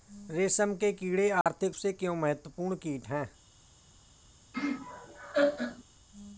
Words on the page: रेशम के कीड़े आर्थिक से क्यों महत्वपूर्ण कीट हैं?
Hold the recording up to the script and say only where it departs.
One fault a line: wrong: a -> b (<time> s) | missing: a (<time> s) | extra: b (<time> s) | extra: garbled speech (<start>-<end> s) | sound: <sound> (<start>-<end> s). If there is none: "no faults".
sound: dropout (1.4-1.5 s)
sound: laugh (4.5-5.8 s)